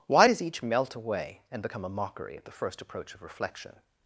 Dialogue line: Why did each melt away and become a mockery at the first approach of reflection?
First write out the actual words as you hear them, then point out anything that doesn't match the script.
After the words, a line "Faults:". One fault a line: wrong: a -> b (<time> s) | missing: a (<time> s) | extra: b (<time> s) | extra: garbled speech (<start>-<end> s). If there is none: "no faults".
Why does each melt away and become a mockery at the first approach of reflection?
Faults:
wrong: did -> does (0.2 s)